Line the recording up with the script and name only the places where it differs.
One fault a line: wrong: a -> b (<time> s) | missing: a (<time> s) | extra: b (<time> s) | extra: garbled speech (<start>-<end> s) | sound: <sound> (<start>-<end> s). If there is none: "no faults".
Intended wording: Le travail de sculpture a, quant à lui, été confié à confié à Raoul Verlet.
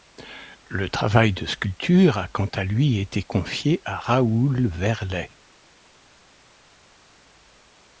missing: confié à (4.0 s)